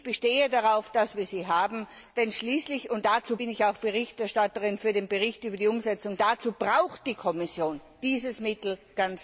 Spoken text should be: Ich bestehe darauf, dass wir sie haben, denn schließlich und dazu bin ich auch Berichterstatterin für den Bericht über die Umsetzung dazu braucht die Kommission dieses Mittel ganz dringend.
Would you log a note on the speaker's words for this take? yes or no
no